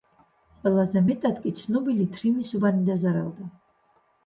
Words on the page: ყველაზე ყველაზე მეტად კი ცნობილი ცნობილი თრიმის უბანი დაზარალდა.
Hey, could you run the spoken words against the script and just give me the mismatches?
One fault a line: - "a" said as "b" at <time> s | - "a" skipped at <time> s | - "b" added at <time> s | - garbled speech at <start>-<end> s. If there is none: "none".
- "ყველაზე" skipped at 1.0 s
- "ცნობილი" skipped at 2.1 s